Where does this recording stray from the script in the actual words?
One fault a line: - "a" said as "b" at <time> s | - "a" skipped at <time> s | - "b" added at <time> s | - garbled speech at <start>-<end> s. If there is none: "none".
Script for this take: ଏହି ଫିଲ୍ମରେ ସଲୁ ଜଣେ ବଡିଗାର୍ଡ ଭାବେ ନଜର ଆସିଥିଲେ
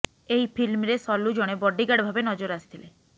none